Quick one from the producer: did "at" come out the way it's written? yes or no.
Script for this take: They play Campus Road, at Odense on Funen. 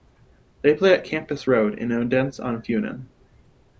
no